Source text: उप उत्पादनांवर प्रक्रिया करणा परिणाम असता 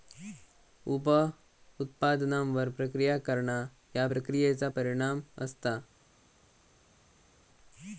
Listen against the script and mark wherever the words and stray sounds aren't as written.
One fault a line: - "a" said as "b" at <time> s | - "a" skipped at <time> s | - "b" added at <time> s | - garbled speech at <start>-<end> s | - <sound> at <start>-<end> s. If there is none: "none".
- "ह्या प्रक्रियेचा" added at 3.9 s